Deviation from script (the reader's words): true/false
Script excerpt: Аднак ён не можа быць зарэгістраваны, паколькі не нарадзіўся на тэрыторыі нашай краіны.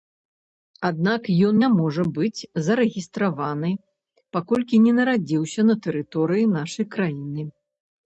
false